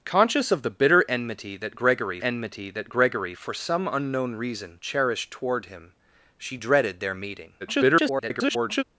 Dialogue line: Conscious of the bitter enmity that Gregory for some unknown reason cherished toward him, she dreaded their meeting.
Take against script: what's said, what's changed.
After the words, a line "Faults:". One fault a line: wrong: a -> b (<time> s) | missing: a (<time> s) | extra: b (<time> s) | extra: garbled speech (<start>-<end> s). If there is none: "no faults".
Conscious of the bitter enmity that Gregory enmity that Gregory for some unknown reason cherished toward him, she dreaded their meeting. [garbled]
Faults:
extra: enmity that Gregory (2.2 s)
extra: garbled speech (7.6-8.8 s)